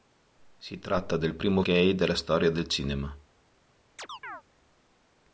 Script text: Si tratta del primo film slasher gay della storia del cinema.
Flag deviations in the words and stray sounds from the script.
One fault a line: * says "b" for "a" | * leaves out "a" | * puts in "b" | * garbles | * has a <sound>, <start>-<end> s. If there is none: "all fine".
* leaves out "film slasher"
* has a chirp, 4.0-4.4 s